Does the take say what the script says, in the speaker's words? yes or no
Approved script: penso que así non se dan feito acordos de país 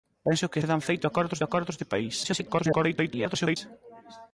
no